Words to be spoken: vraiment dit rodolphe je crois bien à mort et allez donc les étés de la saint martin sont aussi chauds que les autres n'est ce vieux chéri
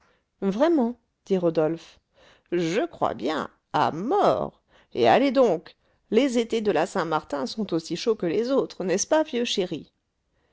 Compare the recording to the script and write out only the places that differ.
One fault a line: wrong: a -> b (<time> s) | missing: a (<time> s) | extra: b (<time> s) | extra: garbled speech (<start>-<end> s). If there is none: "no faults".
extra: pas (9.1 s)